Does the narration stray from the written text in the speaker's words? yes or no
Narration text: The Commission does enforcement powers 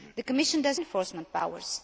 no